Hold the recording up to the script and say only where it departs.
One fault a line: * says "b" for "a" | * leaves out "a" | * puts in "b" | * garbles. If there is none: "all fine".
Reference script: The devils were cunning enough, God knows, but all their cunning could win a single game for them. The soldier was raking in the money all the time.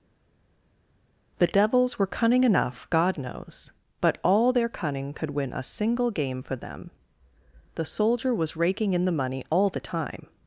all fine